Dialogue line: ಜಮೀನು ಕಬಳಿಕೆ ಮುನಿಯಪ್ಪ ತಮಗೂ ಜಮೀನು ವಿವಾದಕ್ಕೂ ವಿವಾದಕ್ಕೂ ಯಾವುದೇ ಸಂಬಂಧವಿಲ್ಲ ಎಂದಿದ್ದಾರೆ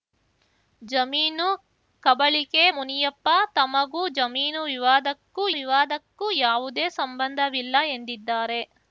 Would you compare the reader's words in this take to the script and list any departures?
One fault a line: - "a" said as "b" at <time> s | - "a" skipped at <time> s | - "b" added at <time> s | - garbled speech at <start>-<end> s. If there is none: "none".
none